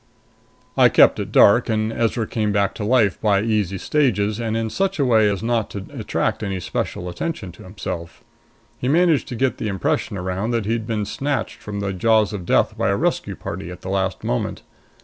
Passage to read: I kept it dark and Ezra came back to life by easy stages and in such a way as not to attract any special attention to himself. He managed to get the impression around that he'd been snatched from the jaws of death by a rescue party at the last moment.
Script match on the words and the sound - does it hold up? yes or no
yes